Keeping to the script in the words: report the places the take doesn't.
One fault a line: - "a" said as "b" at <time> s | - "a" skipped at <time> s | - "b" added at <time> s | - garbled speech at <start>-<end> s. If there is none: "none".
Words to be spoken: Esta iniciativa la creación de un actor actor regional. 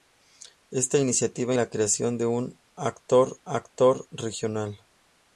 none